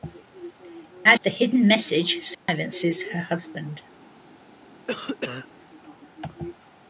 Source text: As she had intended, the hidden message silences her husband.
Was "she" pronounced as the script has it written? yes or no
no